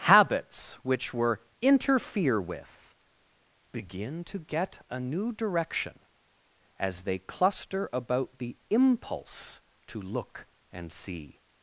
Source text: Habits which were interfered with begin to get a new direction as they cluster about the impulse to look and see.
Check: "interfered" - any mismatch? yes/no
yes